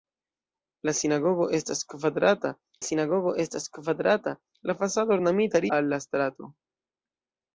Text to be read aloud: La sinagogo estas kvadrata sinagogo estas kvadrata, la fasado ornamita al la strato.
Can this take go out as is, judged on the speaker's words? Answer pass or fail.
pass